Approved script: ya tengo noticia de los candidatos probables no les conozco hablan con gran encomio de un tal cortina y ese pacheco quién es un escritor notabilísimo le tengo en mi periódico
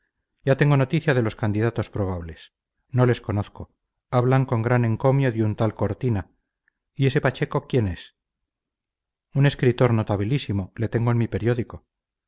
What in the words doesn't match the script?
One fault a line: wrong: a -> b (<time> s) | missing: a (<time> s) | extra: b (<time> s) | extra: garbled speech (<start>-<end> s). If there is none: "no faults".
no faults